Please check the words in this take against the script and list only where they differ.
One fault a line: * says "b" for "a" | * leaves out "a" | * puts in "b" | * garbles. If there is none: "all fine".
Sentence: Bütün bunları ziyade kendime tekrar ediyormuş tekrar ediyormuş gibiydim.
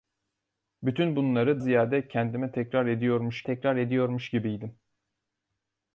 all fine